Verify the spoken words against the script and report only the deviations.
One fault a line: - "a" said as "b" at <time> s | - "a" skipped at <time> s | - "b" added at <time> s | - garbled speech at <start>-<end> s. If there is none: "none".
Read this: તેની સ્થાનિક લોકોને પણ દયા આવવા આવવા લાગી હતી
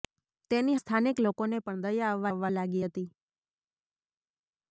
none